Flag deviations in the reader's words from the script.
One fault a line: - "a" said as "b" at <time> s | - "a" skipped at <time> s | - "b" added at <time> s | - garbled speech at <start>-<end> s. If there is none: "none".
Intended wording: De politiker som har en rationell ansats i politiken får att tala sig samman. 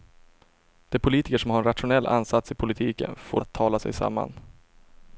none